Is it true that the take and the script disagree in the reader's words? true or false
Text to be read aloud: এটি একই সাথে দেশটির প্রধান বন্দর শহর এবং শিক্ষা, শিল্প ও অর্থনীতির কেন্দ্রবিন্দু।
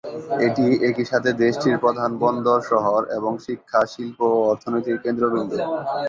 false